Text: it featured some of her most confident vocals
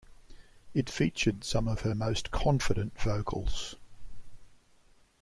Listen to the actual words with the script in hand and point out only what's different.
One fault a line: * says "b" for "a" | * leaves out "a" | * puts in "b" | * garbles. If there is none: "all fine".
all fine